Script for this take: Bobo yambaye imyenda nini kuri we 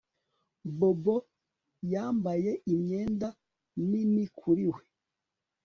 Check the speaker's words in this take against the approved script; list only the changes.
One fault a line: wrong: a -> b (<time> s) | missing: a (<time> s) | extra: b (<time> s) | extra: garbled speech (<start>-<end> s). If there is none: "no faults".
no faults